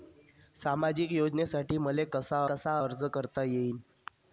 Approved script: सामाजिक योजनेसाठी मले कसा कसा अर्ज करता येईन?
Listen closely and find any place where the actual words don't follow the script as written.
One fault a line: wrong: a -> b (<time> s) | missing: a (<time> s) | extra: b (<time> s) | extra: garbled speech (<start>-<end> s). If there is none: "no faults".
no faults